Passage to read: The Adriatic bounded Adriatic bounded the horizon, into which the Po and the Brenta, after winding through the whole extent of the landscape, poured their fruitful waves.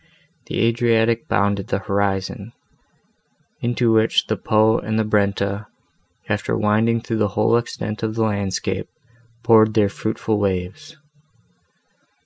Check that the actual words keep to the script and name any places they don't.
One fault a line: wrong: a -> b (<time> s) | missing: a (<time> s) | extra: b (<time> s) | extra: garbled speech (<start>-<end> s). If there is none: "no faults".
missing: Adriatic bounded (1.7 s)